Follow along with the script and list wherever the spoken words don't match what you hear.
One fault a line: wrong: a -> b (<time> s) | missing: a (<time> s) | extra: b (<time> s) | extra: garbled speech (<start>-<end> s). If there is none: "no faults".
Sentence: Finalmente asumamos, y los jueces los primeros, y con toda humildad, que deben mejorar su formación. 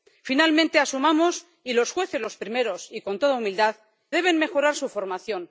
missing: que (3.8 s)